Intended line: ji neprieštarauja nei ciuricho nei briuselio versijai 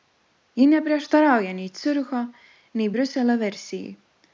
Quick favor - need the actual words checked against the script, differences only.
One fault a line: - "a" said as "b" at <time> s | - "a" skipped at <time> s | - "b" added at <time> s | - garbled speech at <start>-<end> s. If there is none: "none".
none